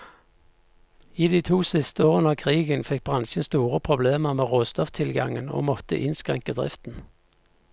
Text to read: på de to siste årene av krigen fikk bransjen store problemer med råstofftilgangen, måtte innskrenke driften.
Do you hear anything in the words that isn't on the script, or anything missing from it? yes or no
yes